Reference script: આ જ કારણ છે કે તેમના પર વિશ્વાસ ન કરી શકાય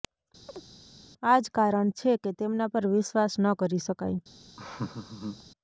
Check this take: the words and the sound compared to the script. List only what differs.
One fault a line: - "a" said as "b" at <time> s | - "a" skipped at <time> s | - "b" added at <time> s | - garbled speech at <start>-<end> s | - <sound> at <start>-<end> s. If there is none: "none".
- chirp at 0.5-0.7 s
- laugh at 4.6-5.4 s